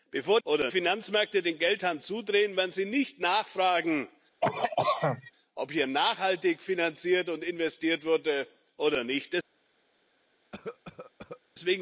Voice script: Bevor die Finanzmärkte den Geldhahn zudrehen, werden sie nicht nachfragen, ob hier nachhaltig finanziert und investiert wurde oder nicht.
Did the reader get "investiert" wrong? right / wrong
right